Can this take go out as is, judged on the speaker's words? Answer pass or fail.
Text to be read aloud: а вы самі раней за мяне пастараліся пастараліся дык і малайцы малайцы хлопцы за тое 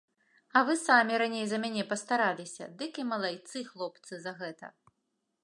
fail